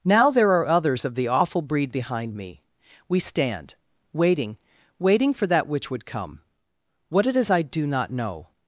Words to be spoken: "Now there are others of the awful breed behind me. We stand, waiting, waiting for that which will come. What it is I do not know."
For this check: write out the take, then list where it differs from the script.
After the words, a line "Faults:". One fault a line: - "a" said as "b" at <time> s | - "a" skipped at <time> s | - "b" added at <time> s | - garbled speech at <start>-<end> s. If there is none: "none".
"Now there are others of the awful breed behind me. We stand, waiting, waiting for that which would come. What it is I do not know."
Faults:
- "will" said as "would" at 5.9 s